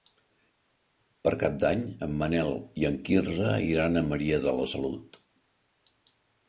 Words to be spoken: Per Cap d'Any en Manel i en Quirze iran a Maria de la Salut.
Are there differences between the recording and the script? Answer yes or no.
no